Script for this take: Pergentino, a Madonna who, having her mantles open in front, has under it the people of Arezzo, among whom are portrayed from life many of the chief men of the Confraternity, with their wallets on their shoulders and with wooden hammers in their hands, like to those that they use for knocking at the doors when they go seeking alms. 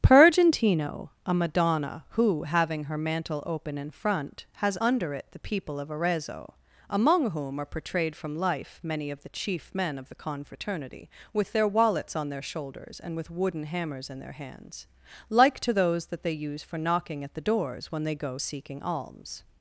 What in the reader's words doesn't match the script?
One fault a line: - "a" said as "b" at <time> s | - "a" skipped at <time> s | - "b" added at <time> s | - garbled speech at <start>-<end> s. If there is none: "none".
- "mantles" said as "mantle" at 3.0 s